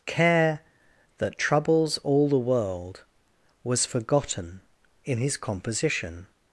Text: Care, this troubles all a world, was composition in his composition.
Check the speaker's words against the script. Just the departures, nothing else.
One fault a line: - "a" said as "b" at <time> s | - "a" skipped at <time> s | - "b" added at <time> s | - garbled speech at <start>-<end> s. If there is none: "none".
- "this" said as "that" at 1.2 s
- "a" said as "the" at 2.3 s
- "composition" said as "forgotten" at 3.8 s